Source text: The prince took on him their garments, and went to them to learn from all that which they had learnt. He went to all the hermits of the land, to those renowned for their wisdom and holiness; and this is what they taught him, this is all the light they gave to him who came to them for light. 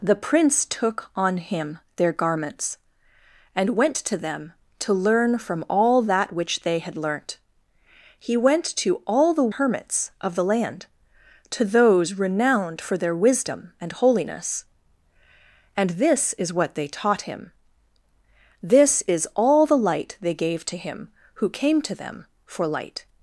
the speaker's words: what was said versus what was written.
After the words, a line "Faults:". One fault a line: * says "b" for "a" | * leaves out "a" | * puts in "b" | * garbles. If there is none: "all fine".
The prince took on him their garments, and went to them to learn from all that which they had learnt. He went to all the hermits of the land, to those renowned for their wisdom and holiness; and this is what they taught him, this is all the light they gave to him who came to them for light.
Faults:
all fine